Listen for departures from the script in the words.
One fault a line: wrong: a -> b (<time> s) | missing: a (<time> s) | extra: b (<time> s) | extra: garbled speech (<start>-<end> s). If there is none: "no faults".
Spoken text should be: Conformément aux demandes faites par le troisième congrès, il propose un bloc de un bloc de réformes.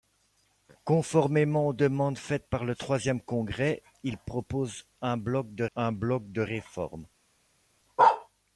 no faults